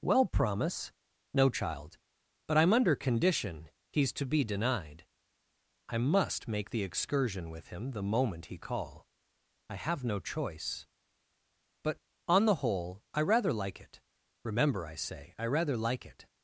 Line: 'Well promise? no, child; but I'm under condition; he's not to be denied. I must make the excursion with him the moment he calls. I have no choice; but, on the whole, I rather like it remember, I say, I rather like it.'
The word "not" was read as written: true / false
false